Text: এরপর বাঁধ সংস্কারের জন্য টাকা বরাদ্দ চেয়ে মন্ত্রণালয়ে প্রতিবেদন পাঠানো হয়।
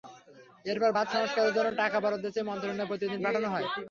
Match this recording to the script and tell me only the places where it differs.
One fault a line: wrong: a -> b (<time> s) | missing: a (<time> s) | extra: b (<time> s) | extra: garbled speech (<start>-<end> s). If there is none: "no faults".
no faults